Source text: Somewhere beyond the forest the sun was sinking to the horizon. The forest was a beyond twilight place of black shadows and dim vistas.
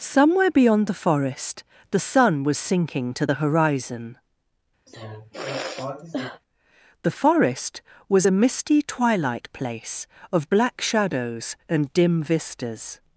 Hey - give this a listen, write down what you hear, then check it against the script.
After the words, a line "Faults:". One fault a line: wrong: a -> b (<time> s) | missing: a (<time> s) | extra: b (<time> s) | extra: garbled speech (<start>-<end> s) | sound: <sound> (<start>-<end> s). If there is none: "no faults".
Somewhere beyond the forest the sun was sinking to the horizon. The forest was a misty twilight place of black shadows and dim vistas.
Faults:
sound: sigh (4.9-6.4 s)
wrong: beyond -> misty (8.3 s)